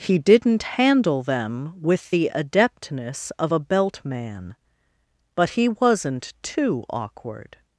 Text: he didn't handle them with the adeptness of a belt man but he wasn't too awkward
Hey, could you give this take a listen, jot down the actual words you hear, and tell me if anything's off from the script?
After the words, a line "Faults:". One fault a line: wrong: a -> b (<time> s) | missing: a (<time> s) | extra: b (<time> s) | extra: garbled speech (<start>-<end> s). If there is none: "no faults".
he didn't handle them with the adeptness of a belt man but he wasn't too awkward
Faults:
no faults